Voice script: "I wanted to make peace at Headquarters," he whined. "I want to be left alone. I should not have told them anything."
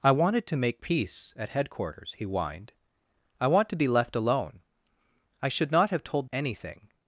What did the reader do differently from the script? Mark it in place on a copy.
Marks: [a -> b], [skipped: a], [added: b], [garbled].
"I wanted to make peace at Headquarters," he whined. "I want to be left alone. I should not have told [skipped: them] anything."